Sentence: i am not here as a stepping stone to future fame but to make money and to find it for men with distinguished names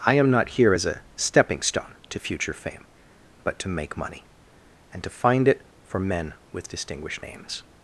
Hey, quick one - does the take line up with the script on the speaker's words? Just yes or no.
yes